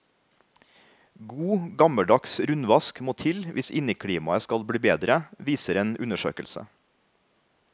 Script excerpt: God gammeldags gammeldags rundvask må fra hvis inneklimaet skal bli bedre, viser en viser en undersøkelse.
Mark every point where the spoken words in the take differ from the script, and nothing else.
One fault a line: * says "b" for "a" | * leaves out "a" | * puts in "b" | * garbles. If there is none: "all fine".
* leaves out "gammeldags"
* says "til" for "fra"
* leaves out "viser en"